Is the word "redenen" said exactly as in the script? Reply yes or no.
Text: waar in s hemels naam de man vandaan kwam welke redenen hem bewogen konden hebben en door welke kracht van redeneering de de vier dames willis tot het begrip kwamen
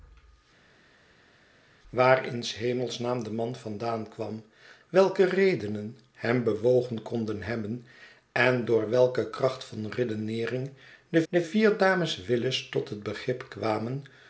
yes